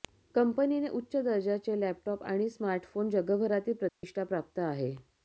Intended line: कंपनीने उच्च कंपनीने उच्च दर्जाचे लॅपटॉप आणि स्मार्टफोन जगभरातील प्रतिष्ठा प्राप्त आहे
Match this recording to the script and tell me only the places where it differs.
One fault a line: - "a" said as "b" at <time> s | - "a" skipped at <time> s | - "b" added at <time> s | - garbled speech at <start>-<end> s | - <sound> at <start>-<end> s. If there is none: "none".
- "कंपनीने उच्च" skipped at 1.1 s
- dropout at 3.9-4.0 s